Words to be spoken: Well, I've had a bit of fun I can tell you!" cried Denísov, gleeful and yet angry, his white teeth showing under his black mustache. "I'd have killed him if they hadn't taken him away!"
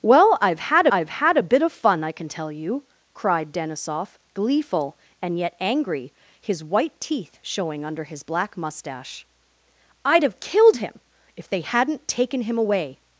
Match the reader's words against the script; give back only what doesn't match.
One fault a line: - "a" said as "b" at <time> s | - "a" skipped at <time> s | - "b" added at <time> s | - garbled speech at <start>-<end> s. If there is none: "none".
- "I've had" added at 0.9 s